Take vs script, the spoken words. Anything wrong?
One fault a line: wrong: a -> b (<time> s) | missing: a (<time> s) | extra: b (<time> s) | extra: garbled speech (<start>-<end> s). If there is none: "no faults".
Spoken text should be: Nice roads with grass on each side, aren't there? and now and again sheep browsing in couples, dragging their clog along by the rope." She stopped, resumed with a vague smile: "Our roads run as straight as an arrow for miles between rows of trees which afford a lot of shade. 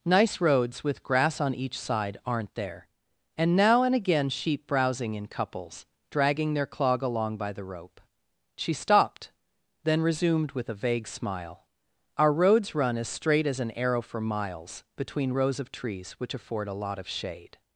extra: then (9.8 s)